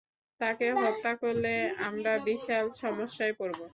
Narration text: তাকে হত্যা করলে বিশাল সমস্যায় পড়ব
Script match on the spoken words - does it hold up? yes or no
no